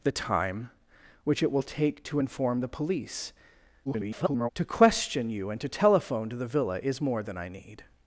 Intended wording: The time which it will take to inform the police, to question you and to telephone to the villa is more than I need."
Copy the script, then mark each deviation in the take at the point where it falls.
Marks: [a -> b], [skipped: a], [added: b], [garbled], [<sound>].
The time which it will take to inform the police, [garbled] to question you and to telephone to the villa is more than I need."